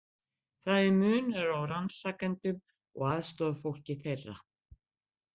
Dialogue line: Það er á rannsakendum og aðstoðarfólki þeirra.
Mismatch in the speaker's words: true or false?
true